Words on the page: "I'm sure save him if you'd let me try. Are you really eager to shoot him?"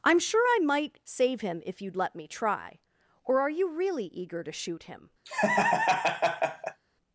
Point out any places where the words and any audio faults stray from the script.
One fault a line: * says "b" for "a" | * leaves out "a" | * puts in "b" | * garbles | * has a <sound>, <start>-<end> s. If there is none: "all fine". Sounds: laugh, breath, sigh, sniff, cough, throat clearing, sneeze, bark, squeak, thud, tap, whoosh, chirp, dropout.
* puts in "I might"
* puts in "Or"
* has a laugh, 5.2-6.8 s